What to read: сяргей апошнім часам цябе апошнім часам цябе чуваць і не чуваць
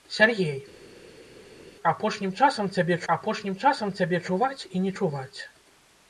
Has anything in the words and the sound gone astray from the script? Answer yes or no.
no